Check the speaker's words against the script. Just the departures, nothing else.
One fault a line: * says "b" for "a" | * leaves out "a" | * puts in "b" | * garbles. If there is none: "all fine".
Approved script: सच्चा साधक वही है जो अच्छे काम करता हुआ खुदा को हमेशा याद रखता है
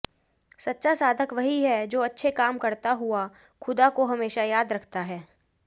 all fine